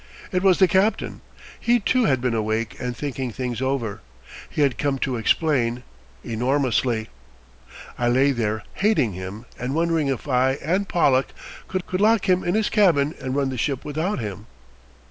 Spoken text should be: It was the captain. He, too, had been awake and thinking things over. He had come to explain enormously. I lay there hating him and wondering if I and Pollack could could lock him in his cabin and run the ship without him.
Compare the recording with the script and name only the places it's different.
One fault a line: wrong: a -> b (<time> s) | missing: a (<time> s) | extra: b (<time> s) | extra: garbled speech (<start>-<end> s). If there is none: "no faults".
no faults